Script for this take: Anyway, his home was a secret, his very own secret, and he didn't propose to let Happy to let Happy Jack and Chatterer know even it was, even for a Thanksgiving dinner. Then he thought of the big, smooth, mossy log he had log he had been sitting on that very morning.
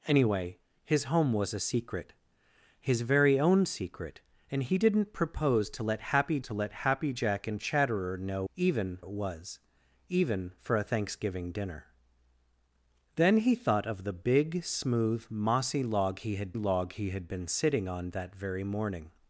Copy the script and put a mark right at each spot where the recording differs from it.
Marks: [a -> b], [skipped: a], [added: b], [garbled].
Anyway, his home was a secret, his very own secret, and he didn't propose to let Happy to let Happy Jack and Chatterer know even it was, even for a Thanksgiving dinner. Then he thought of the big, smooth, mossy log he had log he had been sitting on that very morning.